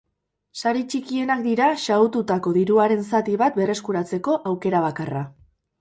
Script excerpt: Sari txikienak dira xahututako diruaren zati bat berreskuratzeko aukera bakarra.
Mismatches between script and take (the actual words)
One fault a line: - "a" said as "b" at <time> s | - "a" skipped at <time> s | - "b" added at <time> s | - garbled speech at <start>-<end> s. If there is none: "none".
none